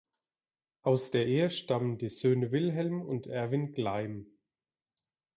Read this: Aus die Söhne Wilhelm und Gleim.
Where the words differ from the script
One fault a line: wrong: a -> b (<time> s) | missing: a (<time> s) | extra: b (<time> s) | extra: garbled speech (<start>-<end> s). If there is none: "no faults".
extra: der Ehe stammen (1.1 s)
extra: Erwin (3.3 s)